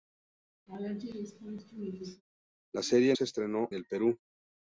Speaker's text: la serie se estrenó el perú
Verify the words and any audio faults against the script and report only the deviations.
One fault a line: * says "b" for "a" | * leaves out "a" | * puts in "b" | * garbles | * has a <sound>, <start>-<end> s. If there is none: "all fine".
* has a laugh, 0.7-2.2 s